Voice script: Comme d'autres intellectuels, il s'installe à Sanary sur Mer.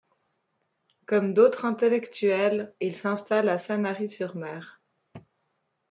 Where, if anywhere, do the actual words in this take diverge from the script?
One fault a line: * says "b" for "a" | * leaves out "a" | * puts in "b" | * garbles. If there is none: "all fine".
all fine